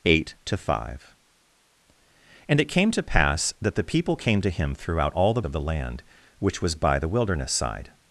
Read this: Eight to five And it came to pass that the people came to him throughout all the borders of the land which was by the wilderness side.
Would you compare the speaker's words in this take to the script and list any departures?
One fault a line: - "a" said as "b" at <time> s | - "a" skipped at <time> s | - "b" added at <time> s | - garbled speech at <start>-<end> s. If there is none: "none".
- "borders" skipped at 5.4 s